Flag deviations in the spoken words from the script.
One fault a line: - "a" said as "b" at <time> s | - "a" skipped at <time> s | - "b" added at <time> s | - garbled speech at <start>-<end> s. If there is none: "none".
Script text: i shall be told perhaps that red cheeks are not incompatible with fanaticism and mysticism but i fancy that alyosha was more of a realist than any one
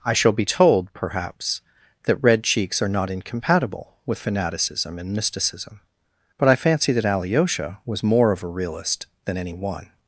none